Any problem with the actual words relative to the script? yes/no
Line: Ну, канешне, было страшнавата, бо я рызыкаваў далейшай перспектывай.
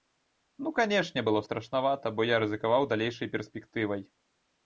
no